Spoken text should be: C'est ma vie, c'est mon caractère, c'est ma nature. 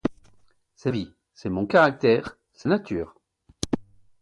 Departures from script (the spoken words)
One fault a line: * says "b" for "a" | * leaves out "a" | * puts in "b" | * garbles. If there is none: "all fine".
* leaves out "ma"
* leaves out "ma"